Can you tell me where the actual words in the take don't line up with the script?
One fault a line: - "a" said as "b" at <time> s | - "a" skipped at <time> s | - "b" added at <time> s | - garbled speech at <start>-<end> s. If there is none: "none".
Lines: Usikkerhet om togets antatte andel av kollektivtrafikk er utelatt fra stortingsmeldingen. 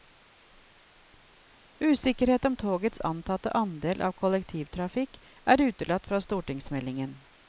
none